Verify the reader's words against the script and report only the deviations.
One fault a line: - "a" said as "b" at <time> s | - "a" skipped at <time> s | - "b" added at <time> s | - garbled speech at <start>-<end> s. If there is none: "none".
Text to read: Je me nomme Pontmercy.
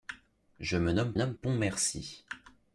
- "nomme" added at 1.2 s